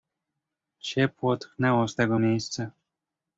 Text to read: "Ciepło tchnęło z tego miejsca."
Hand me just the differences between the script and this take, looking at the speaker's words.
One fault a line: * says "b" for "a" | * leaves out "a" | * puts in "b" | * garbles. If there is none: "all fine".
all fine